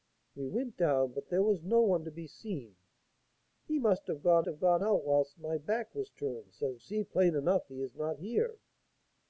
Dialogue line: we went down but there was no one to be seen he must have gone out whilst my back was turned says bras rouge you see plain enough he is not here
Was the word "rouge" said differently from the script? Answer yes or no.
yes